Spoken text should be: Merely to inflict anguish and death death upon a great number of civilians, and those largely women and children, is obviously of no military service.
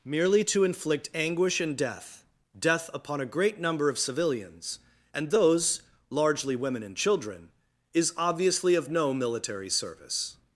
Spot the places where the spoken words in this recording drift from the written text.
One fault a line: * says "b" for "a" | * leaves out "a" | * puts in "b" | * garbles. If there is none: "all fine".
all fine